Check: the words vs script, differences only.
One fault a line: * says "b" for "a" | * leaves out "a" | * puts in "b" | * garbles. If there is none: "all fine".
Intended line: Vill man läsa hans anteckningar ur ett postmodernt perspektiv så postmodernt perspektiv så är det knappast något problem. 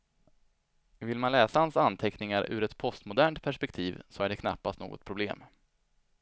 * leaves out "postmodernt perspektiv så"